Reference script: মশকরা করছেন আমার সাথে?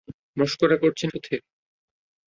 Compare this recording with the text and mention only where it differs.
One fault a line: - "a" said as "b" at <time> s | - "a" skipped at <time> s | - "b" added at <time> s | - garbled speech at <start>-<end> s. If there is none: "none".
- "আমার" skipped at 1.1 s